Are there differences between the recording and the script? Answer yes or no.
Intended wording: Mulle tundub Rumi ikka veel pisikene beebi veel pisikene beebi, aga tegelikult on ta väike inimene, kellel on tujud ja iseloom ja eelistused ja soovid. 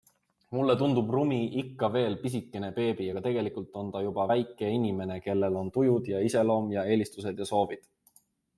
yes